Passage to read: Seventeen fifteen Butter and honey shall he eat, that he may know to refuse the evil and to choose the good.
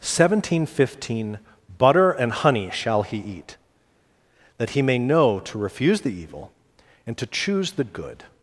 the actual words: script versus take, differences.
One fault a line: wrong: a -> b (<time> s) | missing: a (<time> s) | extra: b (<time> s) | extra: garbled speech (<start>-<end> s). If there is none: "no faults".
no faults